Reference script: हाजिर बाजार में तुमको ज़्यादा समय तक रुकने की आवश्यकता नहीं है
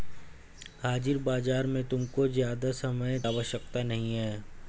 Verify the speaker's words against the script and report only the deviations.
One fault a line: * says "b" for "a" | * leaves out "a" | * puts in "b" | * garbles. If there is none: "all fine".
* leaves out "तक रुकने की"